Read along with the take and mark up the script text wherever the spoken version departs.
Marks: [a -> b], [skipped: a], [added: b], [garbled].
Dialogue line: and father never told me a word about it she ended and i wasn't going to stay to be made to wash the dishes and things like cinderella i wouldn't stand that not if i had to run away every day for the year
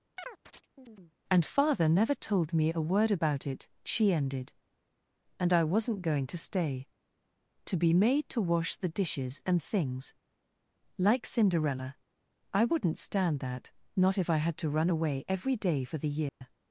and father never told me a word about it she ended and i wasn't going to stay to be made to wash the dishes and things like cinderella i wouldn't stand that not if i had to run away every day for the year